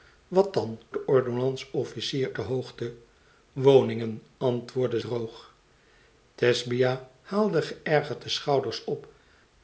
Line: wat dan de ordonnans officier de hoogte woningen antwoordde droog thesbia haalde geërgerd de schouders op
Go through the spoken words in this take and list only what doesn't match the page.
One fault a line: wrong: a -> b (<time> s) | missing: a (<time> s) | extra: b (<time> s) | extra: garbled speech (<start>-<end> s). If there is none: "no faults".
no faults